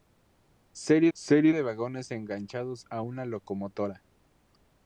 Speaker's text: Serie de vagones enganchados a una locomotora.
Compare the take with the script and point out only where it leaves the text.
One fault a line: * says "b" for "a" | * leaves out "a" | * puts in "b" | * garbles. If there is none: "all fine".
* puts in "serie"